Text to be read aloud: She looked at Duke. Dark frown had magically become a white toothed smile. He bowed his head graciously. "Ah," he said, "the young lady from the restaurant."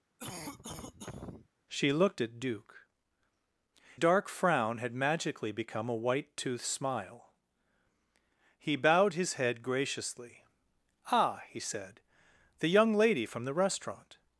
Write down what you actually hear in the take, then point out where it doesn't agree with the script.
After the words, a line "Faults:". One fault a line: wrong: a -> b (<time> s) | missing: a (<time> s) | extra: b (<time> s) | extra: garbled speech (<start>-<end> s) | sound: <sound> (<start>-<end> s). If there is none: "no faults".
She looked at Duke. Dark frown had magically become a white toothed smile. He bowed his head graciously. "Ah," he said, "the young lady from the restaurant."
Faults:
sound: cough (0.2-1.5 s)